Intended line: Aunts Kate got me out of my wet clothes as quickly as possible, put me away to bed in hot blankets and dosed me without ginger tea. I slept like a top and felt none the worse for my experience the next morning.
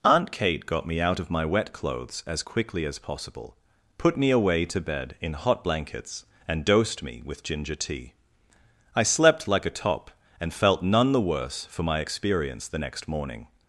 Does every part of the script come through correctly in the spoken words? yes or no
no